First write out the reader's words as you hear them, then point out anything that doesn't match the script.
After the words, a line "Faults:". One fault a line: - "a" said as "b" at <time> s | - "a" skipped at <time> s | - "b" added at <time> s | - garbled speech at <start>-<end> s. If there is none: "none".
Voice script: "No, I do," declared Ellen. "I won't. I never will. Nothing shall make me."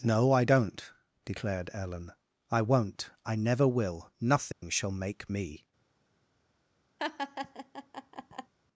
"No, I don't," declared Ellen. "I won't. I never will. Nothing shall make me."
Faults:
- "do" said as "don't" at 0.4 s